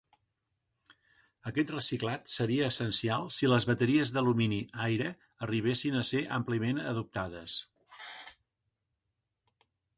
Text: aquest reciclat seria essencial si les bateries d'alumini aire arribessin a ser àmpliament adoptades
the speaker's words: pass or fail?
pass